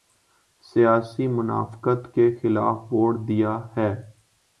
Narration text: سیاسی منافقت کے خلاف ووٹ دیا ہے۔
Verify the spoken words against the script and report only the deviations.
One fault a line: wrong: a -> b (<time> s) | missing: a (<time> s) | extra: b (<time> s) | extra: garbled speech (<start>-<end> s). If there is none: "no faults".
no faults